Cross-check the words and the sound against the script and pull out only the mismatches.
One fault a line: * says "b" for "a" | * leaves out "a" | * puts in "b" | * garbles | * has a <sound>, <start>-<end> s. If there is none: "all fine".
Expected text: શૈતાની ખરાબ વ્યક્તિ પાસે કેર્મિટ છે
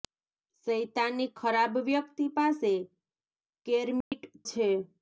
* has a dropout, 4.0-4.1 s